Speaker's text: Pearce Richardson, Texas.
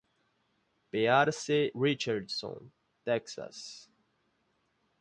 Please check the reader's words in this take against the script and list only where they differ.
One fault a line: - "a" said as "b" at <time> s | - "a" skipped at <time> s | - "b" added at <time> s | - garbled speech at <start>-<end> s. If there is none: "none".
none